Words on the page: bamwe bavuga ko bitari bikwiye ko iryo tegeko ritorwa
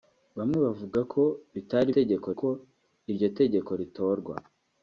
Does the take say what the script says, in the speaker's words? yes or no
no